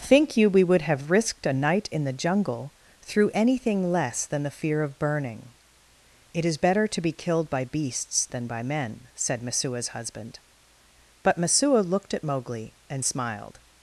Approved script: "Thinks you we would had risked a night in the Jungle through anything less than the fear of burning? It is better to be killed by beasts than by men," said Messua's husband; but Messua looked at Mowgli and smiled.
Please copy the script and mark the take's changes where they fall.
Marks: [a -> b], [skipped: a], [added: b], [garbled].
["Thinks -> Think] you we would [had -> have] risked a night in the Jungle through anything less than the fear of burning? It is better to be killed by beasts than by men," said Messua's husband; but Messua looked at Mowgli and smiled.